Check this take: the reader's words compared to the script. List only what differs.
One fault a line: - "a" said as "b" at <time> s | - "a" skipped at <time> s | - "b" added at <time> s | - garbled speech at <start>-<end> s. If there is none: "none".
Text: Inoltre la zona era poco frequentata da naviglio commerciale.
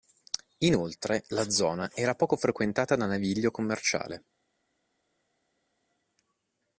none